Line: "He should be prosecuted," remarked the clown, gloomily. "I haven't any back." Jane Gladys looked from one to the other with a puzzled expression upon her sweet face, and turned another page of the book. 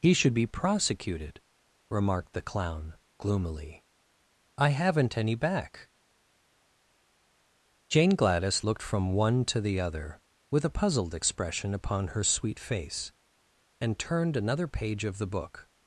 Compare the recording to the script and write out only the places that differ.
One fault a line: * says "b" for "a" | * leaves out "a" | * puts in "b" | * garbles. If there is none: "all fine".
all fine